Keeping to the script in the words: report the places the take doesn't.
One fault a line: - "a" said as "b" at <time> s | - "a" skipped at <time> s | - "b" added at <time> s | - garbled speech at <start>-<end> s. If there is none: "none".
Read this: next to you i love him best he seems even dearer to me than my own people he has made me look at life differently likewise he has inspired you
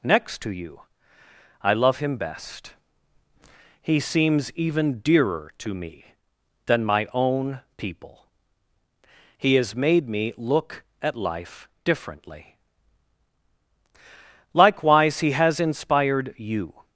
none